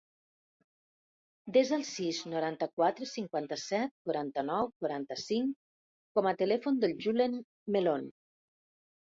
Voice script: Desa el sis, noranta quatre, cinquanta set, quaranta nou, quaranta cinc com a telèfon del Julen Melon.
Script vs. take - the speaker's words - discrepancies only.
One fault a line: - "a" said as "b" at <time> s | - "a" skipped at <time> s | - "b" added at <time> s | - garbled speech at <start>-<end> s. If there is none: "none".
none